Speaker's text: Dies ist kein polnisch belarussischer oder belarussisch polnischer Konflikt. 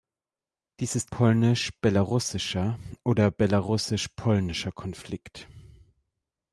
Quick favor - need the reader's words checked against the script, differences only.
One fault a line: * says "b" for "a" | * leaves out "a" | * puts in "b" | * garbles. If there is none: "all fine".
* leaves out "kein"